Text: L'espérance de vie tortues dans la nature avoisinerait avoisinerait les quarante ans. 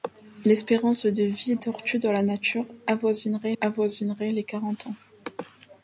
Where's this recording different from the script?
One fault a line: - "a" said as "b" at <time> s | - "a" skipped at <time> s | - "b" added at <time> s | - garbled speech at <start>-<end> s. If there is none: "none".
none